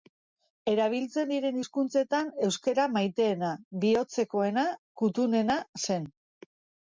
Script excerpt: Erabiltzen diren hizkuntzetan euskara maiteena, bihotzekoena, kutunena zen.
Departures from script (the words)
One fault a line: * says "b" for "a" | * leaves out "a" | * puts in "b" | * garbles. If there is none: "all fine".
all fine